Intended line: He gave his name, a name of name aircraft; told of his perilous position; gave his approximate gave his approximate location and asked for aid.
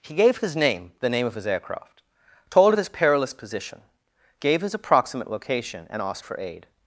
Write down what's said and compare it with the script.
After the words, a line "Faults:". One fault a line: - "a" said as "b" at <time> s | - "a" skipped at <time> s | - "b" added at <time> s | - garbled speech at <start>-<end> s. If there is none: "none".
He gave his name, the name of his aircraft; told of his perilous position; gave his approximate location and asked for aid.
Faults:
- "a" said as "the" at 1.0 s
- "name" said as "his" at 1.4 s
- "gave his approximate" skipped at 5.3 s